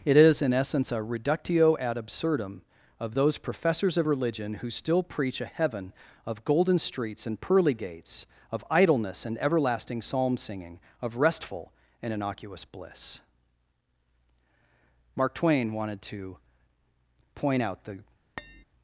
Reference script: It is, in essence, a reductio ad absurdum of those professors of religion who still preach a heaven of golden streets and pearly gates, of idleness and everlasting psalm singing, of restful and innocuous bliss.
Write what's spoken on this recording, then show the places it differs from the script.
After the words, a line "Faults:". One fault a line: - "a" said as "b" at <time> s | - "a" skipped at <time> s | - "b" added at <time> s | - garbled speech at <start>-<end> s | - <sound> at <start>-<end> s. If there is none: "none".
It is, in essence, a reductio ad absurdum of those professors of religion who still preach a heaven of golden streets and pearly gates, of idleness and everlasting psalm singing, of restful and innocuous bliss. Mark Twain wanted to point out the
Faults:
- "Mark Twain wanted to point out the" added at 15.2 s
- tap at 18.4-18.6 s